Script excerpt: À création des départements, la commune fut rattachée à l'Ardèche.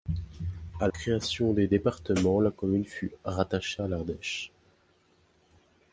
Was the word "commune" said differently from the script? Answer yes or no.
no